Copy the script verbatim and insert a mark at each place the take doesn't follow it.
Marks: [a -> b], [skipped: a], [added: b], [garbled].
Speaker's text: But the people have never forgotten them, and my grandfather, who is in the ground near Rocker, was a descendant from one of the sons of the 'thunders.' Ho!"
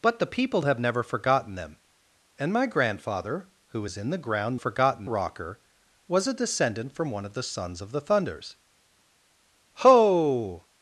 But the people have never forgotten them, and my grandfather, who is in the ground [near -> forgotten] Rocker, was a descendant from one of the sons of the 'thunders.' Ho!"